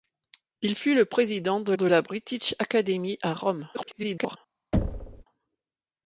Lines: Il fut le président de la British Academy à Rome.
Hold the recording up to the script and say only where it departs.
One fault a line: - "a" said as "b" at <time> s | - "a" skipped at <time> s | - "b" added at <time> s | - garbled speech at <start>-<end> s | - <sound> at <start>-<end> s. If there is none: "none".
- "de" added at 1.7 s
- garbled speech at 3.7-4.4 s
- thud at 4.7-5.2 s